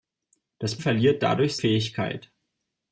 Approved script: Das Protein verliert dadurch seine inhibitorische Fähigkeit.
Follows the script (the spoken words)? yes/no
no